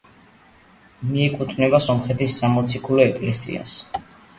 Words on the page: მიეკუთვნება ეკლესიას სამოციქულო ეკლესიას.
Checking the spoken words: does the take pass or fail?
fail